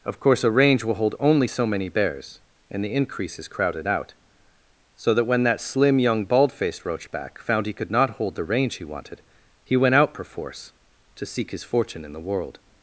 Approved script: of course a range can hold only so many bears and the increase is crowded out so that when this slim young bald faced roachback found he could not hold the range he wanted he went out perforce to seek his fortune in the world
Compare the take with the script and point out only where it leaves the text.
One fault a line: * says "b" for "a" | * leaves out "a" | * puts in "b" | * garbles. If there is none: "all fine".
* says "will" for "can"
* says "that" for "this"